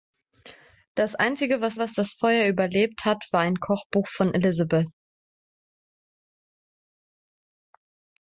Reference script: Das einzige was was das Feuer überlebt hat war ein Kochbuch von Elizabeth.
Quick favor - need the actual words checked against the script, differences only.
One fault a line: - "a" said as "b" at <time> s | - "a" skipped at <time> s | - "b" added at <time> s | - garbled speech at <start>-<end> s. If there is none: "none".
none